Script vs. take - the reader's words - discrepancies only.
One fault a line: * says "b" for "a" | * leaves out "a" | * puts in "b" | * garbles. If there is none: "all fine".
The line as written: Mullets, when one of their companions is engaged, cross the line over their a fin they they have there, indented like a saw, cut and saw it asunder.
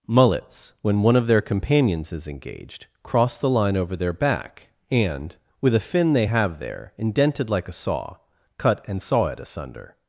* puts in "back and with"
* leaves out "they"